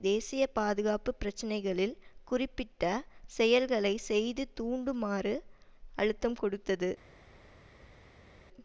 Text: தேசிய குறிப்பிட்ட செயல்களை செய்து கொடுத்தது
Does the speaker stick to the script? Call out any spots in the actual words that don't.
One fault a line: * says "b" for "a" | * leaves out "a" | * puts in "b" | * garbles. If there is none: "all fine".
* puts in "பாதுகாப்பு பிரச்சினைகளில்"
* puts in "தூண்டுமாறு அழுத்தம்"